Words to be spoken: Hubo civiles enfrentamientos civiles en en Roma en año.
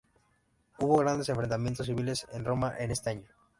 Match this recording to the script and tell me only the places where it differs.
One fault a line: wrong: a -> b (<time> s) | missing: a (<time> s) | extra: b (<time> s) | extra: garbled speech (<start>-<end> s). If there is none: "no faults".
wrong: civiles -> grandes (1.0 s)
missing: en (2.4 s)
extra: este (2.9 s)